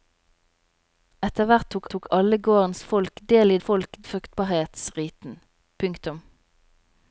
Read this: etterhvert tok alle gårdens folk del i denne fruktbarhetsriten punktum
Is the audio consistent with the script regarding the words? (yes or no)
no